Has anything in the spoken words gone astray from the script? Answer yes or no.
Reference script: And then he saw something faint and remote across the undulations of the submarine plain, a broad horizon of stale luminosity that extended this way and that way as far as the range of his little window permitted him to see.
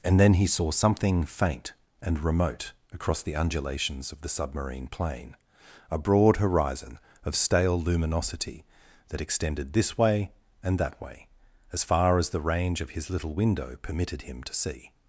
no